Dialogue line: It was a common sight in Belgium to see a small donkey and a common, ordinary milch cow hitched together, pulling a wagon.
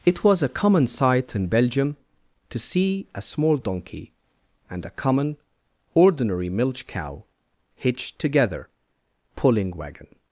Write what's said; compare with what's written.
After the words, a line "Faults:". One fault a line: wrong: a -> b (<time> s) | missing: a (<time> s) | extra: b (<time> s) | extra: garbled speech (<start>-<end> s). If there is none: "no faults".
It was a common sight in Belgium to see a small donkey and a common, ordinary milch cow hitched together, pulling wagon.
Faults:
missing: a (9.8 s)